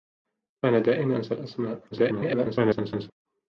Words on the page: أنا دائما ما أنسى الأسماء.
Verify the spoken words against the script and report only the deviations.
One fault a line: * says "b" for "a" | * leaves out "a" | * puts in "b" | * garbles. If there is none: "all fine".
* leaves out "ما"
* garbles